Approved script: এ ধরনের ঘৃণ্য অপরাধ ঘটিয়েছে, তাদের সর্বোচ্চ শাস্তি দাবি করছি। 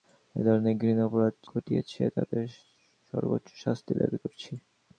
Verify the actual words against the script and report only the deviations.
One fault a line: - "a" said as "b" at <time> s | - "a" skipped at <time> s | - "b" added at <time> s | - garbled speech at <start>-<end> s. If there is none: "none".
none